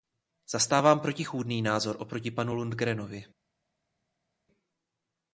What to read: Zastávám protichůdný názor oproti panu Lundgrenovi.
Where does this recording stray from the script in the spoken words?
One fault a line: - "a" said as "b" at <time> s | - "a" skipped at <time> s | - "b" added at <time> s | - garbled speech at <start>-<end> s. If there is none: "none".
none